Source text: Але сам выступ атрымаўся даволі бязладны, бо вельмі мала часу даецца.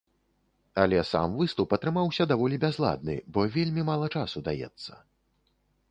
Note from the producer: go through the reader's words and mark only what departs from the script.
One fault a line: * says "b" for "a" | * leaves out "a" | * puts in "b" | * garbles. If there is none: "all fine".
all fine